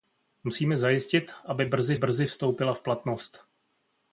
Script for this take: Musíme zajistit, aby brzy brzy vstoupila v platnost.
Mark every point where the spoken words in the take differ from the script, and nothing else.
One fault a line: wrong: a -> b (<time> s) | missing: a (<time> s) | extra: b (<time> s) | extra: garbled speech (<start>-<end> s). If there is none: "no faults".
no faults